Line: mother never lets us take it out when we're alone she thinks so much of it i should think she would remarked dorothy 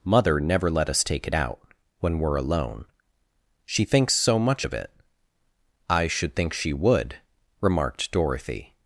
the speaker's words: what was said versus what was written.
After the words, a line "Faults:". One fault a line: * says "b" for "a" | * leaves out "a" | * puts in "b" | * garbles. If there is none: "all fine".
mother never let us take it out when we're alone she thinks so much of it i should think she would remarked dorothy
Faults:
* says "let" for "lets"